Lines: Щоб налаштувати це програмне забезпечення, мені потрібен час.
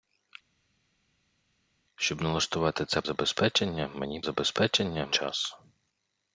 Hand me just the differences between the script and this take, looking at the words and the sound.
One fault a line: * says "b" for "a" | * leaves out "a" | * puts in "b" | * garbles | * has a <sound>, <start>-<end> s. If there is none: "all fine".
* leaves out "програмне"
* says "забезпечення" for "потрібен"